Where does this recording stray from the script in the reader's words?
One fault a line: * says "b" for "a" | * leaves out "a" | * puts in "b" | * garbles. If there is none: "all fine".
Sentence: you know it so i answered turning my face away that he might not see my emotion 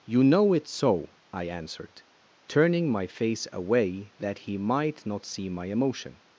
all fine